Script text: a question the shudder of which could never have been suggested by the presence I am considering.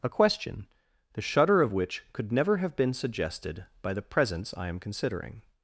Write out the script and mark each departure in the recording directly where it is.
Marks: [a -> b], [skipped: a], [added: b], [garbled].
a question the shudder of which could never have been suggested by the presence I am considering.